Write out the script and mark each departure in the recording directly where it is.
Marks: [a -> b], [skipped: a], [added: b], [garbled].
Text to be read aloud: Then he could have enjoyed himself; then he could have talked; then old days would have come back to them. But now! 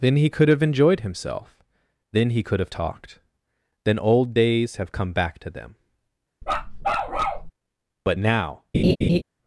Then he could have enjoyed himself; then he could have talked; then old days [skipped: would] have come back to them. But now!